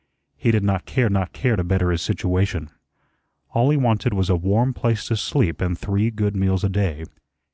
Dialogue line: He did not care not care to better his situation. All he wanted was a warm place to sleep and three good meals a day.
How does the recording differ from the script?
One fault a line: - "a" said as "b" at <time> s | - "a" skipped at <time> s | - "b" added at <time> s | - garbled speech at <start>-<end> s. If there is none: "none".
none